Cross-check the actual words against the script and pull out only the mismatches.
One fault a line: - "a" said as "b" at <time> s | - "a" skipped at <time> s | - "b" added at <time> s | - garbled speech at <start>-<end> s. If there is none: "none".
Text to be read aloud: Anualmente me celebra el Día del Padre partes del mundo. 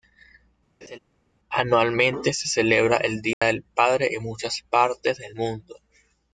- "me" said as "se" at 2.3 s
- "en muchas" added at 4.1 s